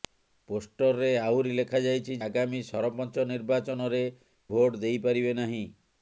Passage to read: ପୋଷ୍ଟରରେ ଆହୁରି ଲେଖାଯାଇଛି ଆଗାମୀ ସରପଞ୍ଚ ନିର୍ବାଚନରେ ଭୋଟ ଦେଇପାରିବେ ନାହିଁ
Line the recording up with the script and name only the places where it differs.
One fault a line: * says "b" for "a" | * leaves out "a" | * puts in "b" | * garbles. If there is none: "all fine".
all fine